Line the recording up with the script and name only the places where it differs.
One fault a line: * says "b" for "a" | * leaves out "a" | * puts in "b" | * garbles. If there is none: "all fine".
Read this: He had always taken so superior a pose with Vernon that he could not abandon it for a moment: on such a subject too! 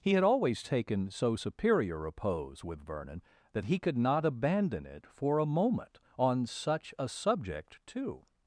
all fine